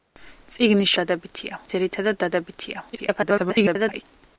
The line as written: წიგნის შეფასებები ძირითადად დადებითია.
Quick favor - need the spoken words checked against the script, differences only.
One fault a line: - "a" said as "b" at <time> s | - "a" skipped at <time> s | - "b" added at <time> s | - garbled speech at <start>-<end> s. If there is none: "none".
- "შეფასებები" said as "დადებითია" at 1.0 s
- garbled speech at 2.9-4.0 s